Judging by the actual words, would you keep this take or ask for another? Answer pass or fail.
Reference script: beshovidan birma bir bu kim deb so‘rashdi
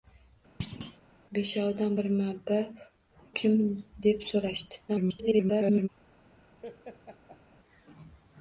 fail